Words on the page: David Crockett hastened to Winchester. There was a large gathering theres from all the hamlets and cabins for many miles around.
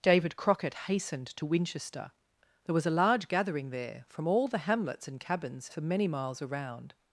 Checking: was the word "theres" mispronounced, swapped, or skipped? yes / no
yes